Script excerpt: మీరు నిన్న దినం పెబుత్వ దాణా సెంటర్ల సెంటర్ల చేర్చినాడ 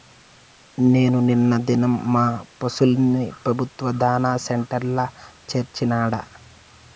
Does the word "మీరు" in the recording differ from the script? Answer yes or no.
yes